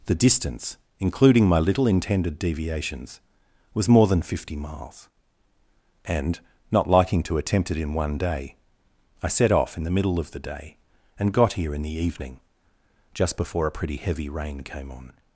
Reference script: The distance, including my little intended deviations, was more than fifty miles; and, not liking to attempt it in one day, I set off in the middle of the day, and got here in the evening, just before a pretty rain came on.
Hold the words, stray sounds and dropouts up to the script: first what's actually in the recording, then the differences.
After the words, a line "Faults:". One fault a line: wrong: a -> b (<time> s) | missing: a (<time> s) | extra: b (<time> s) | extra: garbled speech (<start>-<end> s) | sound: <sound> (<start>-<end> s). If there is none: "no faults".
The distance, including my little intended deviations, was more than fifty miles; and, not liking to attempt it in one day, I set off in the middle of the day, and got here in the evening, just before a pretty heavy rain came on.
Faults:
extra: heavy (14.0 s)